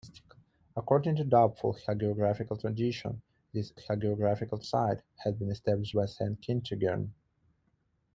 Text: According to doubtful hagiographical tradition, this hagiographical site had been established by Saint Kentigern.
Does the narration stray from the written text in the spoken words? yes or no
no